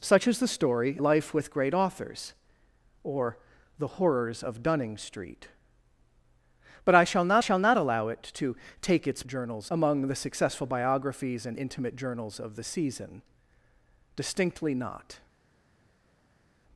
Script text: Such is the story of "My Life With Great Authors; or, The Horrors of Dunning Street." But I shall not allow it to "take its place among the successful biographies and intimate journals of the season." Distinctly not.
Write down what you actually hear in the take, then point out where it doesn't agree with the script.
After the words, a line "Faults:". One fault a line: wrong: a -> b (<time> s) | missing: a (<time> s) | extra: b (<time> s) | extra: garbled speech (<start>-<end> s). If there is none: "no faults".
Such is the story Life With Great Authors; or, The Horrors of Dunning Street." But I shall not shall not allow it to "take its journals among the successful biographies and intimate journals of the season." Distinctly not.
Faults:
missing: of My (1.0 s)
extra: shall not (7.4 s)
wrong: place -> journals (9.3 s)